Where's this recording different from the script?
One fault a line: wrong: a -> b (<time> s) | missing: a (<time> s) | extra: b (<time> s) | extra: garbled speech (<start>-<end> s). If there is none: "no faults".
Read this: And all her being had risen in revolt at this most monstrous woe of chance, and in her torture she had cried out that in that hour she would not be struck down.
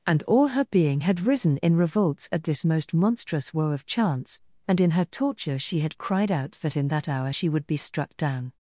wrong: revolt -> revolts (1.8 s)
missing: not (7.7 s)